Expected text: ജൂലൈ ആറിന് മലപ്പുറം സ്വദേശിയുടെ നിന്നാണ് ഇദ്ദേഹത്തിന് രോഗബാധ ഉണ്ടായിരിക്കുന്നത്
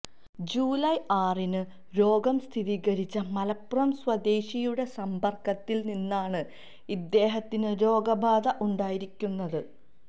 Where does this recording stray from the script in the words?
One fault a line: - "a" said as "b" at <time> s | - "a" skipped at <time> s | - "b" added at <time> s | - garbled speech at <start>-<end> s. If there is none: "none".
- "രോഗം സ്ഥിരീകരിച്ച" added at 1.9 s
- "സമ്പർക്കത്തിൽ" added at 5.0 s